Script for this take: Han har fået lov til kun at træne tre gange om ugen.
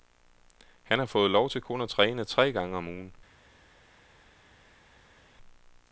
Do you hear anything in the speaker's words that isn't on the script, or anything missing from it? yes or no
no